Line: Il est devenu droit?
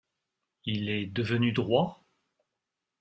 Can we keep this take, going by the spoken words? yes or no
yes